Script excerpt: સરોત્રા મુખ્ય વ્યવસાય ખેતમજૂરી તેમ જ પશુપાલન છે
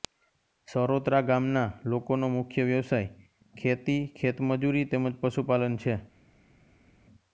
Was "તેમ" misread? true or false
false